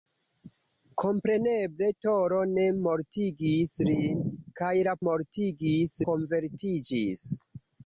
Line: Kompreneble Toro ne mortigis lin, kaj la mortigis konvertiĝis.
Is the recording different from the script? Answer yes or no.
no